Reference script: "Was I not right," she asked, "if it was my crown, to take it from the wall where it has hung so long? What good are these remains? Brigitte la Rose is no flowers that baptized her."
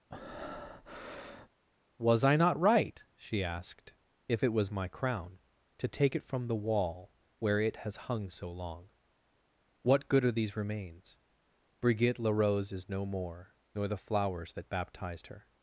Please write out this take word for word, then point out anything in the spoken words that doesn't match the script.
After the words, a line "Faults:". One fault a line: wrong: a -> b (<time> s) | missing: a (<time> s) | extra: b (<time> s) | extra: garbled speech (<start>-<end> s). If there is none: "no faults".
"Was I not right," she asked, "if it was my crown, to take it from the wall where it has hung so long? What good are these remains? Brigitte la Rose is no more, nor the flowers that baptized her."
Faults:
extra: more nor the (13.1 s)